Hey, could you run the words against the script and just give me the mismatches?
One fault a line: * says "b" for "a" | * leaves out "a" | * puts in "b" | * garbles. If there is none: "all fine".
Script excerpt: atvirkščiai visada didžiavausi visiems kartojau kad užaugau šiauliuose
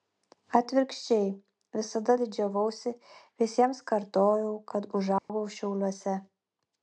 all fine